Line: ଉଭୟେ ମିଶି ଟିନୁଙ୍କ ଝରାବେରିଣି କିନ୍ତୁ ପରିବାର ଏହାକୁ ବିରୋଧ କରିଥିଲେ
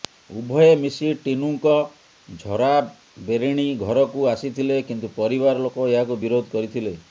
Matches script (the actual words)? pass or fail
fail